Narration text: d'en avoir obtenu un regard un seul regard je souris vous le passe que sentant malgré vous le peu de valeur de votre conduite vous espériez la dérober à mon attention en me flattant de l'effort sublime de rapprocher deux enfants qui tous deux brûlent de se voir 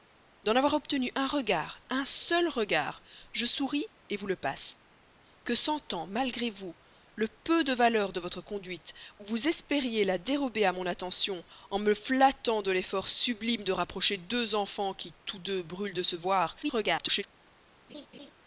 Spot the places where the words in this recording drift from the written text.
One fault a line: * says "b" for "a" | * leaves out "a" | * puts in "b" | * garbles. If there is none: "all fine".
* garbles